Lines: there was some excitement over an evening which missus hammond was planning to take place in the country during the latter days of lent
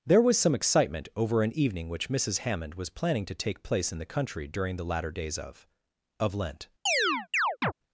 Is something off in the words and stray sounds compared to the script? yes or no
yes